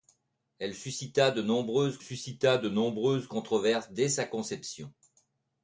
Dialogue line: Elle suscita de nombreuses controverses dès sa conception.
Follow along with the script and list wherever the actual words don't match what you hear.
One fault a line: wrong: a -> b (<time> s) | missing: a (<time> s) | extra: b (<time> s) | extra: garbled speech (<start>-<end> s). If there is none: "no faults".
extra: suscita de nombreuses (2.0 s)